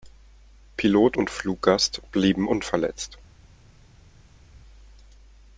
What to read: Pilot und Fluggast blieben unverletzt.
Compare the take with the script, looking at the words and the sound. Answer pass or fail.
pass